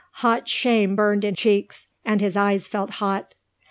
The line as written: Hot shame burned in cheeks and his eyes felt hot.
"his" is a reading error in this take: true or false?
false